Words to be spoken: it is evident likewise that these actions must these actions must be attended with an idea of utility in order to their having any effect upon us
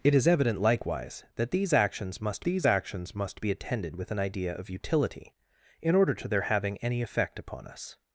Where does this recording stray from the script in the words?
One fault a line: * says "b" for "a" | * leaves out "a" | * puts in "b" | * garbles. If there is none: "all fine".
all fine